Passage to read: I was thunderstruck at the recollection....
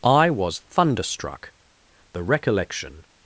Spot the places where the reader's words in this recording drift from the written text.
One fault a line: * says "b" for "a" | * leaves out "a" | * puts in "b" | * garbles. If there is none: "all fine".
* leaves out "at"